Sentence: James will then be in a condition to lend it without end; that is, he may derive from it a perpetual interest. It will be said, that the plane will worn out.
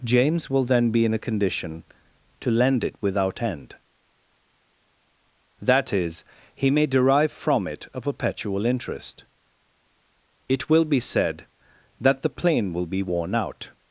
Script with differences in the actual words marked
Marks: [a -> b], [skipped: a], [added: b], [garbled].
James will then be in a condition to lend it without end; that is, he may derive from it a perpetual interest. It will be said, that the plane will [added: be] worn out.